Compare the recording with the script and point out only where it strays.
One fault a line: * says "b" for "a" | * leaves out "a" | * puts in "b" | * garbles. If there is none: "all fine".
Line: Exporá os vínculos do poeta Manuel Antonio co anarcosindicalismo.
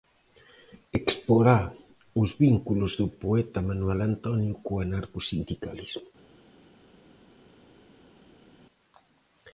all fine